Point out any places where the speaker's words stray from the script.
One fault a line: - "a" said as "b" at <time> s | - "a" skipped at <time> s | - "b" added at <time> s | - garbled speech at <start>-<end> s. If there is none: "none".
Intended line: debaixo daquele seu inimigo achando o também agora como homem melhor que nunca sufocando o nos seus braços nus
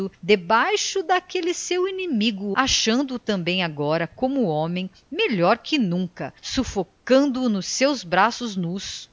none